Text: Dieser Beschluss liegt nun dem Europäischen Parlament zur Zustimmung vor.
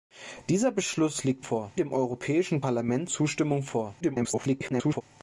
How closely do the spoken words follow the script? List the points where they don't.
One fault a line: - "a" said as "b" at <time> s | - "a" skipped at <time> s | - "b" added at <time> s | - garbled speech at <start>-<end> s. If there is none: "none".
- "nun" said as "vor" at 1.4 s
- "zur" skipped at 3.1 s
- garbled speech at 4.0-5.0 s